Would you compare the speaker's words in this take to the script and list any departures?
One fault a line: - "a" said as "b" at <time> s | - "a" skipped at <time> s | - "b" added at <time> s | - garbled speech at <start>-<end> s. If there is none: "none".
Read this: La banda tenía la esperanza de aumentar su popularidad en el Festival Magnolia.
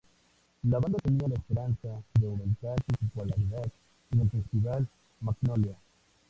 none